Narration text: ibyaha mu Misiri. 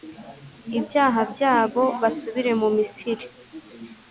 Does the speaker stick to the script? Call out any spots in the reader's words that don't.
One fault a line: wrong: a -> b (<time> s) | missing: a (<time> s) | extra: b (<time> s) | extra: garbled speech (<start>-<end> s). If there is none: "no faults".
extra: byabo basubire (1.3 s)